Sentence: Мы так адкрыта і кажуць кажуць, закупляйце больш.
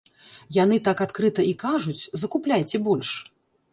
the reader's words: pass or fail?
fail